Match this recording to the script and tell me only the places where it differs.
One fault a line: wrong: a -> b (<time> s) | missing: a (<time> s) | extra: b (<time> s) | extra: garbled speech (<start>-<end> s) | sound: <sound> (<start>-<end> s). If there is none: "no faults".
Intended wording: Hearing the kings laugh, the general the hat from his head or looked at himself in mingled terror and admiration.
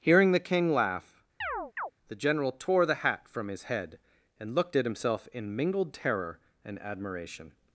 wrong: kings -> king (0.4 s)
sound: chirp (1.4-1.9 s)
extra: tore (2.5 s)
wrong: or -> and (4.4 s)